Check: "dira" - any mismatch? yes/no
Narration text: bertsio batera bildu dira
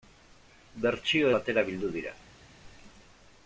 no